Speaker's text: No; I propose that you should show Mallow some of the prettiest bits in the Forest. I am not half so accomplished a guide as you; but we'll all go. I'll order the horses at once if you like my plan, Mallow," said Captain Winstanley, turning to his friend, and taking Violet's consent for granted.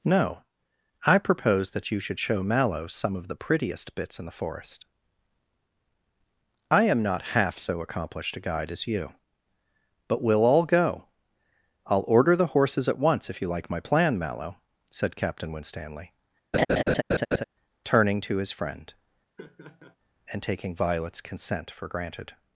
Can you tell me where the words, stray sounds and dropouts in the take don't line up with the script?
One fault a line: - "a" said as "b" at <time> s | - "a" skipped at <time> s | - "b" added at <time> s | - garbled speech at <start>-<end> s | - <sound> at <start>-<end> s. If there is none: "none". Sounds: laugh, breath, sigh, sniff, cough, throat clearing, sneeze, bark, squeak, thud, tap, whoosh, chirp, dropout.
- laugh at 16.5-17.4 s
- laugh at 19.4-20.0 s